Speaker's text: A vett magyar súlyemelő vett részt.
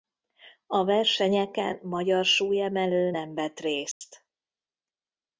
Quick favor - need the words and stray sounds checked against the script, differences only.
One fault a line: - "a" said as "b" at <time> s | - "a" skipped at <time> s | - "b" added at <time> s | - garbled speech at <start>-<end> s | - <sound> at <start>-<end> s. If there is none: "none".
- "vett" said as "versenyeken" at 0.8 s
- "nem" added at 3.1 s
- dropout at 3.9-4.0 s